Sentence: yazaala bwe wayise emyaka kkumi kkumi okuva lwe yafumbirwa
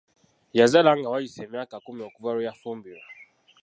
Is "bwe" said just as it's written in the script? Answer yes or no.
no